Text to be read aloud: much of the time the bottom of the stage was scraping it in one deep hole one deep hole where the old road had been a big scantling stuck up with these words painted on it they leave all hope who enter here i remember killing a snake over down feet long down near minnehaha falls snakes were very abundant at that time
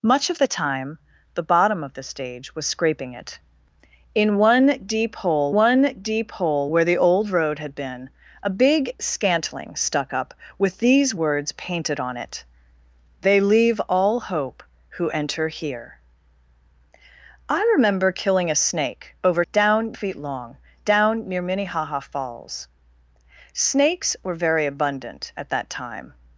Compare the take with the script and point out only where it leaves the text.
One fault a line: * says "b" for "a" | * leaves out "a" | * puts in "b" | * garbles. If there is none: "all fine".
all fine